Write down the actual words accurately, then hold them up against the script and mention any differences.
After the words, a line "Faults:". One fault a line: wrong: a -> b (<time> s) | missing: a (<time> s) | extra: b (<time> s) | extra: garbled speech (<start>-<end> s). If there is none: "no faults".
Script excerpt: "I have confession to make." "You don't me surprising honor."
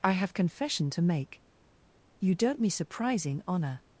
"I have confession to make." "You don't me surprising honor."
Faults:
no faults